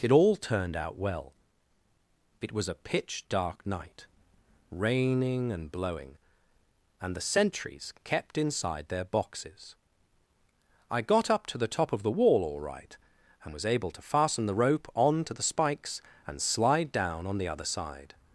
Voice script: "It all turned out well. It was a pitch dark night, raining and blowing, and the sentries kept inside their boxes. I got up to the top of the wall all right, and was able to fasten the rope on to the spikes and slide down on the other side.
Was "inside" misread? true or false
false